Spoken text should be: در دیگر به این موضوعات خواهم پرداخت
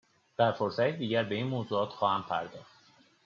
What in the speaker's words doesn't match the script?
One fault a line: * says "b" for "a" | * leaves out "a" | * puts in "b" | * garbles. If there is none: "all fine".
* puts in "فرصتی"